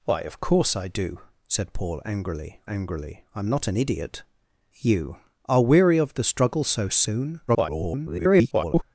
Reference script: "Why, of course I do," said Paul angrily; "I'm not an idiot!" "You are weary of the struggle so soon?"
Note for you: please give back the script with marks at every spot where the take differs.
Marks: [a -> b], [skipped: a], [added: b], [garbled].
"Why, of course I do," said Paul angrily; [added: angrily] "I'm not an idiot!" "You are weary of the struggle so soon?" [garbled]